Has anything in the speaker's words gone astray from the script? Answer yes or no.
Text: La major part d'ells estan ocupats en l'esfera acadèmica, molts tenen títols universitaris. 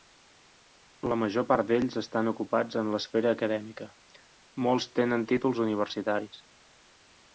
no